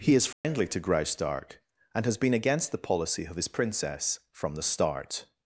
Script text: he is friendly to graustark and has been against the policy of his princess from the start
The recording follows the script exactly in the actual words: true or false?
true